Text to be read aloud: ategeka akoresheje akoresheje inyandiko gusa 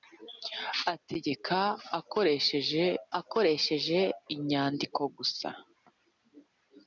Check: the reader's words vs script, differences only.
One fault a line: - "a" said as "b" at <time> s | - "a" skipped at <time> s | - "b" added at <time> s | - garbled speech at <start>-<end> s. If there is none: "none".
none